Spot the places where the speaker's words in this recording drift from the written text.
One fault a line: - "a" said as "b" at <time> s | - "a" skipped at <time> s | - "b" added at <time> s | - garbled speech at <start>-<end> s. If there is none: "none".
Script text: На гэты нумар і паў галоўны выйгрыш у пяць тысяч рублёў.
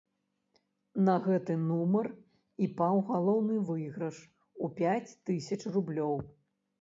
none